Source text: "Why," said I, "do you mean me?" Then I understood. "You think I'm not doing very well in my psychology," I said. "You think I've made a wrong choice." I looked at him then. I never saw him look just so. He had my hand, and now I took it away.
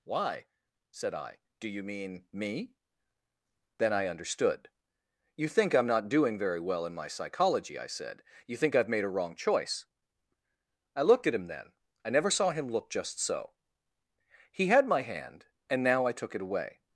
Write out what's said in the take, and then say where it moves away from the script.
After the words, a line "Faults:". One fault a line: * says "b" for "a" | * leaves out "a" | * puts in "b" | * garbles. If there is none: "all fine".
"Why," said I, "do you mean me?" Then I understood. "You think I'm not doing very well in my psychology," I said. "You think I've made a wrong choice." I looked at him then. I never saw him look just so. He had my hand, and now I took it away.
Faults:
all fine